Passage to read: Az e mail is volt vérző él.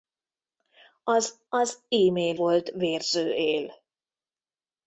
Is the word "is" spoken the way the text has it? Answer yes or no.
no